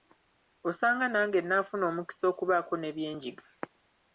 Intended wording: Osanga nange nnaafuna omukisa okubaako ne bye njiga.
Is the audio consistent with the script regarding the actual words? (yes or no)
yes